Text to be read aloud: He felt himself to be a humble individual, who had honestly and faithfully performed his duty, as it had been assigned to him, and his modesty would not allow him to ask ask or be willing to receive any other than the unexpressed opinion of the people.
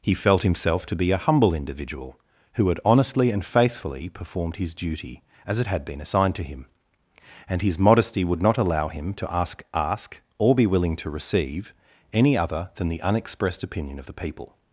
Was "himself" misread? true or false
false